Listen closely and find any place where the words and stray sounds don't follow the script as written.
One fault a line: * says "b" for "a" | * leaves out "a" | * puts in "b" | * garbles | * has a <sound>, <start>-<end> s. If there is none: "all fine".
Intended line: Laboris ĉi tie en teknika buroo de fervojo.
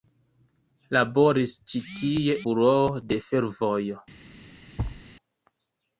* leaves out "en teknika"
* has a thud, 4.8-5.0 s